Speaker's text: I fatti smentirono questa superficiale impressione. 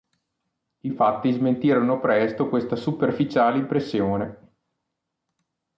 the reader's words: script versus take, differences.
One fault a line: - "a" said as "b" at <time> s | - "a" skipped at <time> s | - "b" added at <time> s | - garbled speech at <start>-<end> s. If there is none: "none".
- "presto" added at 2.0 s